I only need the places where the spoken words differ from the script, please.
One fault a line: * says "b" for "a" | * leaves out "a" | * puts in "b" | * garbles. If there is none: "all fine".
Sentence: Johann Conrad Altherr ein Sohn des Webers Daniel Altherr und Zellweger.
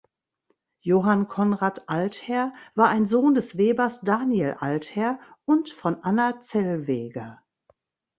* puts in "war"
* puts in "von Anna"